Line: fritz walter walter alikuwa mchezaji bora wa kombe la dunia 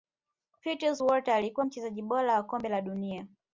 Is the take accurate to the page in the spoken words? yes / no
no